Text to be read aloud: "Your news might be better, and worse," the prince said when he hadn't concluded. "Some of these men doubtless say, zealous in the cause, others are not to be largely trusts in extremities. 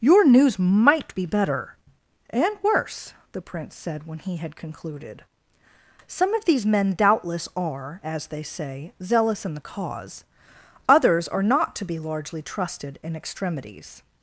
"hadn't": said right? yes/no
no